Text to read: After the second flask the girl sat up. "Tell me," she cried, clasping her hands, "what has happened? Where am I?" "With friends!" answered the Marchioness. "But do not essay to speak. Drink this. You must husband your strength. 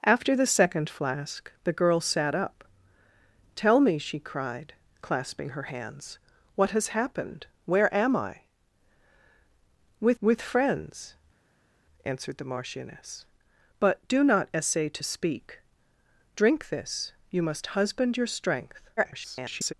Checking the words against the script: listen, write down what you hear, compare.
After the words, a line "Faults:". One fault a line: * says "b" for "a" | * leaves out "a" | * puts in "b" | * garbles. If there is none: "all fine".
After the second flask the girl sat up. "Tell me," she cried, clasping her hands, "what has happened? Where am I?" "With with friends!" answered the Marchioness. "But do not essay to speak. Drink this. You must husband your strength. [garbled]
Faults:
* puts in "with"
* garbles